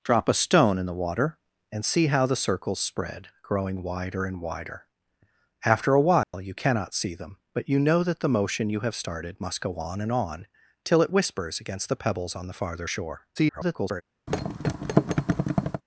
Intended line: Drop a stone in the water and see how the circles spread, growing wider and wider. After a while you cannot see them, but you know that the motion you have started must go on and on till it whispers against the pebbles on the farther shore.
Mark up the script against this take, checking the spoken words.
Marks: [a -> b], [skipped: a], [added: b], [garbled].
Drop a stone in the water and see how the circles spread, growing wider and wider. After a while you cannot see them, but you know that the motion you have started must go on and on till it whispers against the pebbles on the farther shore. [garbled]